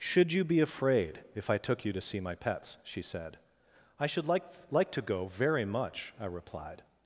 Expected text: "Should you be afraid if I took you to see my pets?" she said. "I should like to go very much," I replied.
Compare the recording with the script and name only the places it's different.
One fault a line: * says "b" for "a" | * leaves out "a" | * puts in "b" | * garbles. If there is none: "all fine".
* puts in "like"